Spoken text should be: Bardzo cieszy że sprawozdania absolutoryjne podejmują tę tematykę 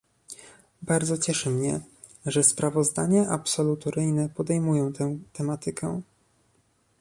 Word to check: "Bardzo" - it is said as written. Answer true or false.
true